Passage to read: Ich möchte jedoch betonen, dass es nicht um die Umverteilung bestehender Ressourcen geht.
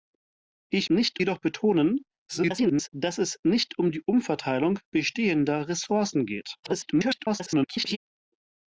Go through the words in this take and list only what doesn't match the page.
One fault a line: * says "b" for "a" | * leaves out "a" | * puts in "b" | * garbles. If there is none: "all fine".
* says "nicht" for "möchte"
* garbles
* garbles